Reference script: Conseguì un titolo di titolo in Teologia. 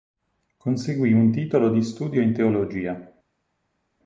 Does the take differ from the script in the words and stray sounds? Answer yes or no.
yes